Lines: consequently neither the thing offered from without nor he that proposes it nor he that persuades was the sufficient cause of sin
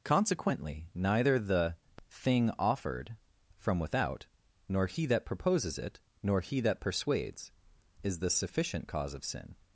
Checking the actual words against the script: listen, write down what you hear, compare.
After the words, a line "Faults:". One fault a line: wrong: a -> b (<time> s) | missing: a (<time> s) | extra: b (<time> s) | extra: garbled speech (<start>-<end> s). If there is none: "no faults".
consequently neither the thing offered from without nor he that proposes it nor he that persuades is the sufficient cause of sin
Faults:
wrong: was -> is (8.0 s)